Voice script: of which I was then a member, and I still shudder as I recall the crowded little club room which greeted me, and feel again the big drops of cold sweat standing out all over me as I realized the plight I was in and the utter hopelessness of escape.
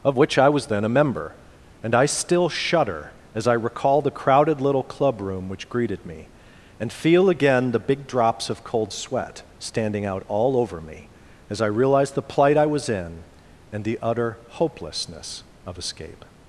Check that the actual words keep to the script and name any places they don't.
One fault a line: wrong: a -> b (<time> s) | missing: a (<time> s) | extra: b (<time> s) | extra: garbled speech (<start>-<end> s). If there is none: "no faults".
no faults